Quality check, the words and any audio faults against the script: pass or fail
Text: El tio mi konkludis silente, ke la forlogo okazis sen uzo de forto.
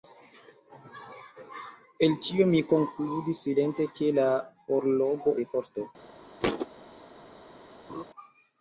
fail